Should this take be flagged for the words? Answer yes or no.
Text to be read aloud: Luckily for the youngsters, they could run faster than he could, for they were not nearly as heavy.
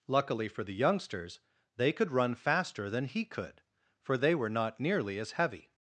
no